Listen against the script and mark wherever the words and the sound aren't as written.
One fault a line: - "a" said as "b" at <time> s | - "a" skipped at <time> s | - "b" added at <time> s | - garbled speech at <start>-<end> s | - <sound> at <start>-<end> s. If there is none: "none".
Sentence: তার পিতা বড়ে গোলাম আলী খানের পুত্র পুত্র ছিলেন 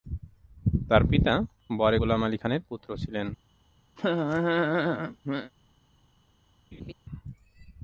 - "পুত্র" skipped at 2.9 s
- laugh at 4.0-5.5 s
- laugh at 6.7-6.9 s